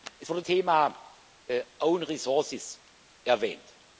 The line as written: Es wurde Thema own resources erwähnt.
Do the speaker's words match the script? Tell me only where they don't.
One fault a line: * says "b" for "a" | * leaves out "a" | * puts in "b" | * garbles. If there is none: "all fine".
all fine